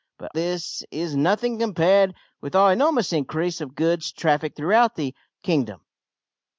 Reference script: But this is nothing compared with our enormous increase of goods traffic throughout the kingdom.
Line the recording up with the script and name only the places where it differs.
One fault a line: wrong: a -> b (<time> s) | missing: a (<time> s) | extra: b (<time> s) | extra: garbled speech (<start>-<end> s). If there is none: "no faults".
no faults